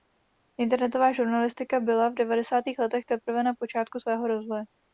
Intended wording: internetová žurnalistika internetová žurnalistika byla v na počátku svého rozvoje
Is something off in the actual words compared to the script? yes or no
yes